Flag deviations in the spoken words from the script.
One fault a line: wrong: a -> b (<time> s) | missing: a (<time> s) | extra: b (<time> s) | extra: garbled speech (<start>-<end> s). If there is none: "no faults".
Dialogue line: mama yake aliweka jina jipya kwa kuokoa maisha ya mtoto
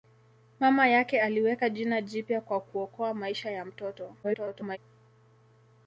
extra: garbled speech (4.2-4.8 s)